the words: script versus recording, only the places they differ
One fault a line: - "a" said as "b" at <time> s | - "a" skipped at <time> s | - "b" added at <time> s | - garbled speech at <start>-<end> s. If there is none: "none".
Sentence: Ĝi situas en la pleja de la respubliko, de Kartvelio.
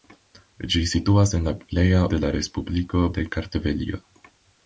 none